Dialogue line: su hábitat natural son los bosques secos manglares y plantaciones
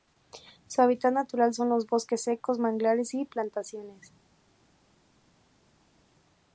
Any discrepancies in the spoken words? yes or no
no